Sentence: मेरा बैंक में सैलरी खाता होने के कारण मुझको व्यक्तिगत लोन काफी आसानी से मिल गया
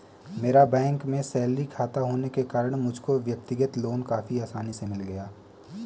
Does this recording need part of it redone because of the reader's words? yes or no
no